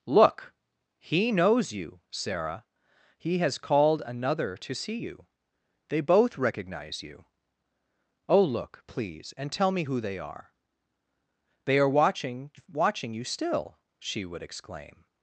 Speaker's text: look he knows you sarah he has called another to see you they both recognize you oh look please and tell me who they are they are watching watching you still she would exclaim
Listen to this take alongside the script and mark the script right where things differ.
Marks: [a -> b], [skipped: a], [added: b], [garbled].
look he knows you sarah he has called another to see you they both recognize you oh look please and tell me who they are they are watching watching you still she would exclaim